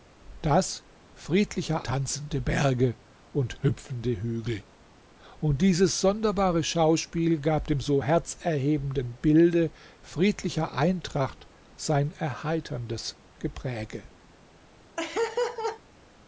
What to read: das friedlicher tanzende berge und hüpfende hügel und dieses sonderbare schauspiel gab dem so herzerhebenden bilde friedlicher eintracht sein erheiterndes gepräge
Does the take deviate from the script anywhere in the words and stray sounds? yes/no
yes